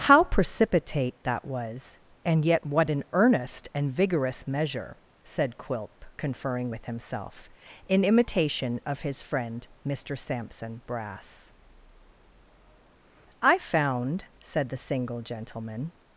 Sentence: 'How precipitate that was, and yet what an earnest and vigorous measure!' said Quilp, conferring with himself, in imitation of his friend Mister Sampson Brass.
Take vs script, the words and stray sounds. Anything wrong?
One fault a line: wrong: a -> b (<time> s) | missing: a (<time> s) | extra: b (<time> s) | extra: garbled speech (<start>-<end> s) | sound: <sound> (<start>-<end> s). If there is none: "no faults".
extra: I found said the single gentleman (13.4 s)